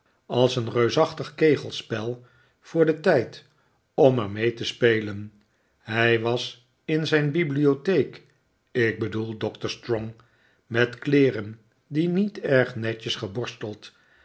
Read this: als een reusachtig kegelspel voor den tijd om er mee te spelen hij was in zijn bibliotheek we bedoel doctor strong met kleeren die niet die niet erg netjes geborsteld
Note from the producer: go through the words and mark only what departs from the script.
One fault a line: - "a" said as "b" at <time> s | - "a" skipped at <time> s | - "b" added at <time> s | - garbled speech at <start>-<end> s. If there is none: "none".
- "we" said as "ik" at 8.7 s
- "die niet" skipped at 12.4 s